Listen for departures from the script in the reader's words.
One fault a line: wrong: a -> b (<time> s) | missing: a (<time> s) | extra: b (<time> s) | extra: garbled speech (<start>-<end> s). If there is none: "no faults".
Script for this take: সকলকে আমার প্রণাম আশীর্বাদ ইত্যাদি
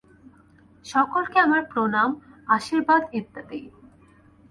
no faults